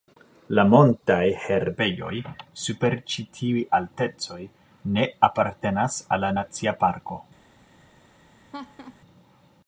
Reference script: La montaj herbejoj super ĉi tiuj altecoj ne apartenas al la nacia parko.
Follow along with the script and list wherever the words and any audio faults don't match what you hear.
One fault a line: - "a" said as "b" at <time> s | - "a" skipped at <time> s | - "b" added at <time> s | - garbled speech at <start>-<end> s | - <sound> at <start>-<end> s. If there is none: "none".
- laugh at 8.5-9.0 s